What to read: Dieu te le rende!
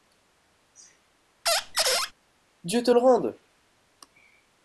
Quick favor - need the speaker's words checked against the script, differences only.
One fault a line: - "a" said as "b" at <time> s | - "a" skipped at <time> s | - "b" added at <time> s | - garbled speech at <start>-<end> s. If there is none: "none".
none